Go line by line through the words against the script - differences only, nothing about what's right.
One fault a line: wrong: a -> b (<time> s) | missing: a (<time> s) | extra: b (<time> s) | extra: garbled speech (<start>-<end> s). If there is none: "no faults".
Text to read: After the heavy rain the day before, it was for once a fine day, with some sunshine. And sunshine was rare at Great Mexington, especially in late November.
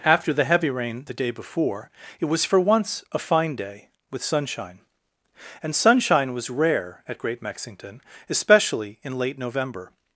missing: some (4.2 s)